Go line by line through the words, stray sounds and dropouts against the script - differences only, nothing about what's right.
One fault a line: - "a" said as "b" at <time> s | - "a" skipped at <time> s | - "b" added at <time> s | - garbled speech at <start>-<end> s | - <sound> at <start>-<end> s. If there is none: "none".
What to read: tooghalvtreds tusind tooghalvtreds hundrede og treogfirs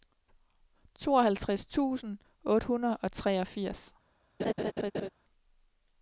- "tooghalvtreds" said as "otte" at 2.5 s
- laugh at 4.4-5.1 s